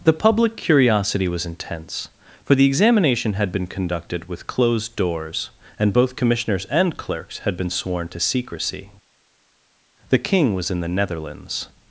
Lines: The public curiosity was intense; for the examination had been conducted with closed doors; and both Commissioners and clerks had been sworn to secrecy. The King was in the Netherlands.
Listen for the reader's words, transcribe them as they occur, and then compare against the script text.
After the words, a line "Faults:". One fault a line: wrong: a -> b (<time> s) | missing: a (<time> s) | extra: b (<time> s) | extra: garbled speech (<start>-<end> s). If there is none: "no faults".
The public curiosity was intense; for the examination had been conducted with closed doors; and both Commissioners and clerks had been sworn to secrecy. The King was in the Netherlands.
Faults:
no faults